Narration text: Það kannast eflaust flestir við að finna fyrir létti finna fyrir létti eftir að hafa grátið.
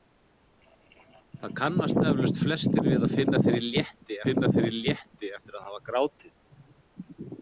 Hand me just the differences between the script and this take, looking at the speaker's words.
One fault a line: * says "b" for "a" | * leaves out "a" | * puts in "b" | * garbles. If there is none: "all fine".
all fine